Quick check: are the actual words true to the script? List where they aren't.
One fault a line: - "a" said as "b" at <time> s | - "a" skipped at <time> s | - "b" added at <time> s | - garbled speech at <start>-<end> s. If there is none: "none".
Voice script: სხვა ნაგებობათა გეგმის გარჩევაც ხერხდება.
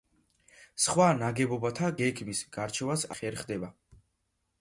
none